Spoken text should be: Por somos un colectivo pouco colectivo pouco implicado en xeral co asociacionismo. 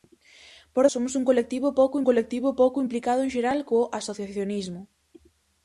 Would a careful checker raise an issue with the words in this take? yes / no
no